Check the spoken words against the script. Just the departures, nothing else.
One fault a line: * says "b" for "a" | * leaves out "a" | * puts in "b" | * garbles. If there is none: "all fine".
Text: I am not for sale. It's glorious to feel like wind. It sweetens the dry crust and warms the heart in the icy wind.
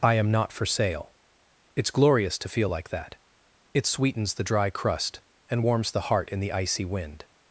* says "that" for "wind"